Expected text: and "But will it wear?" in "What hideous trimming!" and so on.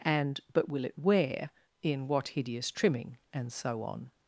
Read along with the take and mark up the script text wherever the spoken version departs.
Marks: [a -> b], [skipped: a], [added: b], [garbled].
and "But will it wear?" in "What hideous trimming!" and so on.